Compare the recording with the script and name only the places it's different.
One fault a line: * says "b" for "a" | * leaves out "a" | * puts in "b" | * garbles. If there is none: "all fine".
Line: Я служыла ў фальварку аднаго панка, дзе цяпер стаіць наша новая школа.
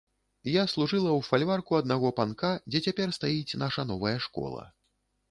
all fine